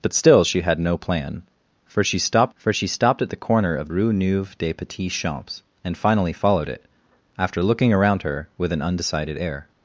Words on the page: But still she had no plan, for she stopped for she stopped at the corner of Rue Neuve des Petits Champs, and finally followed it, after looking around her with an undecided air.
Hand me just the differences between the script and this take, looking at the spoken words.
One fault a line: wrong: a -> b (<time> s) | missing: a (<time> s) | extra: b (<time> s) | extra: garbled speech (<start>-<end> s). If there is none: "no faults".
no faults